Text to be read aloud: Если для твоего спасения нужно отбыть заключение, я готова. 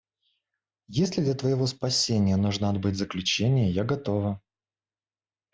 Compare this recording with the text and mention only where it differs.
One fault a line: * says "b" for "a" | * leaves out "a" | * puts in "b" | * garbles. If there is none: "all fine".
all fine